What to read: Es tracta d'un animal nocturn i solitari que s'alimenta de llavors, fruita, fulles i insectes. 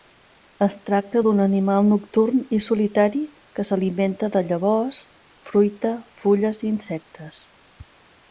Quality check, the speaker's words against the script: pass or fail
pass